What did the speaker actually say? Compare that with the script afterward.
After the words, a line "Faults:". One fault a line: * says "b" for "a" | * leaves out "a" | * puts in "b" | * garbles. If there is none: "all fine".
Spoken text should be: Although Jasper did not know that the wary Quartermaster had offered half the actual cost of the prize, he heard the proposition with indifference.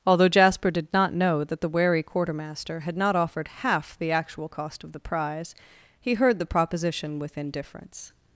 Although Jasper did not know that the wary Quartermaster had not offered half the actual cost of the prize, he heard the proposition with indifference.
Faults:
* puts in "not"